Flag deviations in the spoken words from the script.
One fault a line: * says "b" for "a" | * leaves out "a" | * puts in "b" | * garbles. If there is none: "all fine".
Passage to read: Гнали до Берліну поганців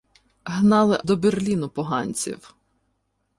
all fine